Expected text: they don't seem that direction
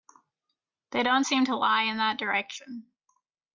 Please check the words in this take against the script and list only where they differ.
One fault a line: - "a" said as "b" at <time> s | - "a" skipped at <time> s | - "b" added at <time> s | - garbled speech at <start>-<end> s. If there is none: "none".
- "to lie in" added at 1.5 s